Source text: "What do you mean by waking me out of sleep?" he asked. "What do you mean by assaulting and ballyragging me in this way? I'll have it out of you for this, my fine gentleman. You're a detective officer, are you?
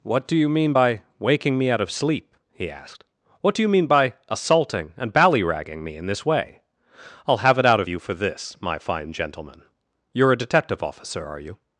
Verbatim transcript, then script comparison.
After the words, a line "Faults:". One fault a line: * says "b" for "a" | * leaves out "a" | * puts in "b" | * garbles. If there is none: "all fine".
"What do you mean by waking me out of sleep?" he asked. "What do you mean by assaulting and ballyragging me in this way? I'll have it out of you for this, my fine gentleman. You're a detective officer, are you?
Faults:
all fine